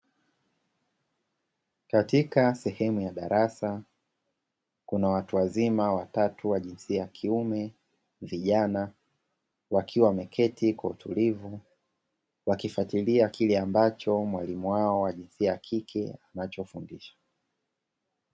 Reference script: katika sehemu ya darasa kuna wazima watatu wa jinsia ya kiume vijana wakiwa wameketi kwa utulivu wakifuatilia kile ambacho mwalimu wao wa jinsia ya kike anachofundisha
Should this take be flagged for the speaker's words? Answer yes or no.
yes